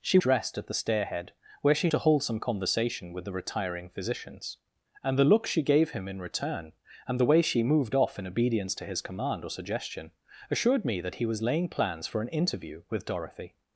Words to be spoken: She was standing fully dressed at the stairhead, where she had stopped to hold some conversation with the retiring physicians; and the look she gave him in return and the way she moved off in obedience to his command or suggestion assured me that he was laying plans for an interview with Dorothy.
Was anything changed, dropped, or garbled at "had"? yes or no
yes